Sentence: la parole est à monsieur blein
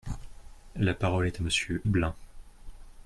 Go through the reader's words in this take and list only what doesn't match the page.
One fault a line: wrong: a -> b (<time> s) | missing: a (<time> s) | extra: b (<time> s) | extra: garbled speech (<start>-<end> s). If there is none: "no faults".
no faults